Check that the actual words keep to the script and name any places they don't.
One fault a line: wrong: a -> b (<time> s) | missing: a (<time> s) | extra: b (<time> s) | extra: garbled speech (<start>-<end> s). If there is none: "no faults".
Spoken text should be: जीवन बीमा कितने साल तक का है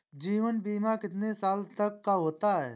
extra: होता (2.2 s)